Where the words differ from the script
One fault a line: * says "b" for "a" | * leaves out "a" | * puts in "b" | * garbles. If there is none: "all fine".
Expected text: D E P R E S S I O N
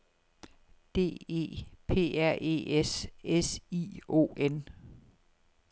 all fine